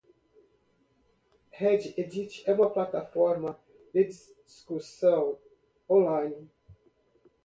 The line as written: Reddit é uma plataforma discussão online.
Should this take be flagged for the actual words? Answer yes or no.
yes